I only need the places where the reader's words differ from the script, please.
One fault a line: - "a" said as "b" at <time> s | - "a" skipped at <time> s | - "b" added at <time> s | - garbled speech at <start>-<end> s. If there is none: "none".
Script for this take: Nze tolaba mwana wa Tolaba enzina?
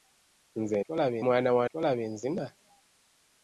none